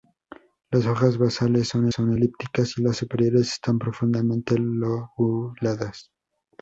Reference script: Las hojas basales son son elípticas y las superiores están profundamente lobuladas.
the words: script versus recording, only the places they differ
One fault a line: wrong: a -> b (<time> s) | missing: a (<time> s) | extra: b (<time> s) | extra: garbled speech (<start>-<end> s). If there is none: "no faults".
no faults